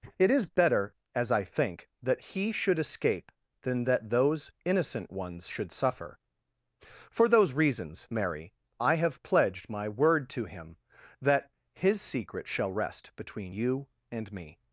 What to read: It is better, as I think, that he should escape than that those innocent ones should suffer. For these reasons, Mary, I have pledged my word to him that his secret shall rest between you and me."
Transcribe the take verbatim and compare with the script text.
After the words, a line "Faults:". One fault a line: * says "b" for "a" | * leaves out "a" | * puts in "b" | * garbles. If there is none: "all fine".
It is better, as I think, that he should escape than that those innocent ones should suffer. For those reasons, Mary, I have pledged my word to him that his secret shall rest between you and me."
Faults:
* says "those" for "these"